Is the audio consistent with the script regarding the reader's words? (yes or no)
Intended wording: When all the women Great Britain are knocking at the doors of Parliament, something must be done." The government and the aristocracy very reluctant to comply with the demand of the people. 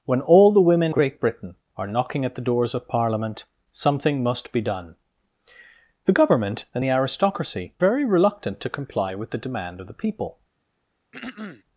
yes